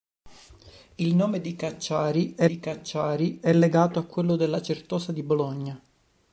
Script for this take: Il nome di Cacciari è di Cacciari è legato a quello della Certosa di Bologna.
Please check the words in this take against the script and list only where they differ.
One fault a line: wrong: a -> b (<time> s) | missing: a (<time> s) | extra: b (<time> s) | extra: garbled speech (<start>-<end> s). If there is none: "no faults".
no faults